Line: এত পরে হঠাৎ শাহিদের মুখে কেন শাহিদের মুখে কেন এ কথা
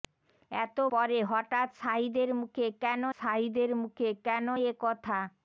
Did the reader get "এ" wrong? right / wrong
right